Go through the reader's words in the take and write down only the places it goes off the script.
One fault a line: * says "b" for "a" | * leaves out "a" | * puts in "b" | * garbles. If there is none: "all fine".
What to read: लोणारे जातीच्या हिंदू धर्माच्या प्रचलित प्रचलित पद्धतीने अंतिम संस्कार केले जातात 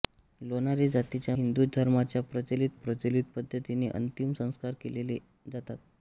all fine